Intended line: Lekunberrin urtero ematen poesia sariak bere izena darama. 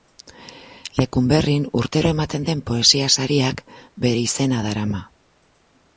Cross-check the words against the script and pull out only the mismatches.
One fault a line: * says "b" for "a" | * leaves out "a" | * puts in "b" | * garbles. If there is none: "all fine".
* puts in "den"